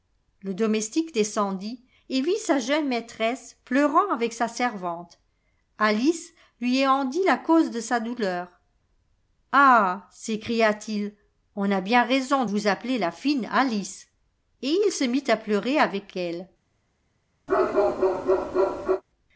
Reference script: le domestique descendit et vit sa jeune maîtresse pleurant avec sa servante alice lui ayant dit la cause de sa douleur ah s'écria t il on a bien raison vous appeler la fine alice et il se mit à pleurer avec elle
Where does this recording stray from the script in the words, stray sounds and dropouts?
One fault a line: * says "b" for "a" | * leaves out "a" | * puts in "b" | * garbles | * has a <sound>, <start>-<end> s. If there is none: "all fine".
* has a bark, 17.5-19.0 s